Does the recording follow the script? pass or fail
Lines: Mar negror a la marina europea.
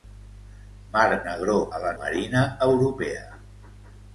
pass